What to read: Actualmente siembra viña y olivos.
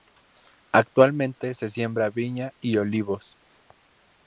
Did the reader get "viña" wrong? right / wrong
right